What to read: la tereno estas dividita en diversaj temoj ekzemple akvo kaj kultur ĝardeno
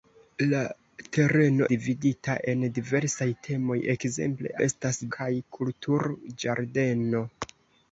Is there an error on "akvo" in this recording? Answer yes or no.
yes